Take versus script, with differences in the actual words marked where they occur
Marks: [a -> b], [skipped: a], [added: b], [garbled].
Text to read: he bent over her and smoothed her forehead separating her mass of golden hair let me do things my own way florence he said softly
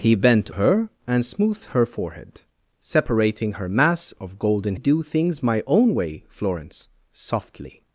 he bent [skipped: over] her and smoothed her forehead separating her mass of golden [skipped: hair let me] do things my own way florence [skipped: he said] softly